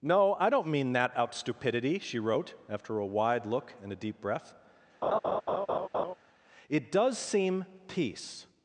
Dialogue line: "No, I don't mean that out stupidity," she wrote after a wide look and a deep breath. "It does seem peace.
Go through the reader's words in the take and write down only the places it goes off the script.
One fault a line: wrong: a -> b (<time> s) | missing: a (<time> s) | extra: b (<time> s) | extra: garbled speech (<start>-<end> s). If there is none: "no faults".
no faults